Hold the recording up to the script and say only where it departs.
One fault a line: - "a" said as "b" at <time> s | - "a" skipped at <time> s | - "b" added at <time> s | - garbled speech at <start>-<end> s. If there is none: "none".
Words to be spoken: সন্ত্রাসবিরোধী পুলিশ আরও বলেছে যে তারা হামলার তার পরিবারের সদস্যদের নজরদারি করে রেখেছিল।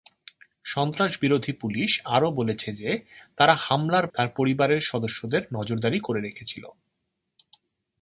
none